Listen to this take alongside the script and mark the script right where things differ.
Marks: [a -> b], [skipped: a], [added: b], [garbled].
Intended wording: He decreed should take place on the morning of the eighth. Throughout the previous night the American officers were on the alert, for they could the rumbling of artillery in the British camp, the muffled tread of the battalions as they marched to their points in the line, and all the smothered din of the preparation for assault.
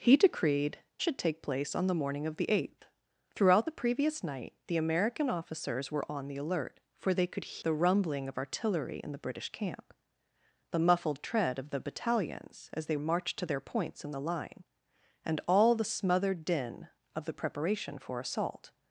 He decreed should take place on the morning of the eighth. Throughout the previous night the American officers were on the alert, for they could the rumbling of artillery in the British camp, the muffled tread of the battalions as they marched to their points in the line, and all the smothered din of the preparation for assault.